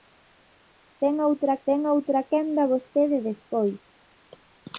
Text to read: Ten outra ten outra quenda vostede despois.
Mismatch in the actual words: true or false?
false